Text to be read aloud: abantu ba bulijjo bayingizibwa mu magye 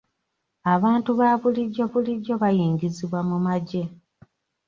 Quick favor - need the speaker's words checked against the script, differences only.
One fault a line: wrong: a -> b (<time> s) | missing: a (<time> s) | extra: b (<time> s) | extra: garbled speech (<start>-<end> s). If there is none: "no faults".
extra: bulijjo (1.9 s)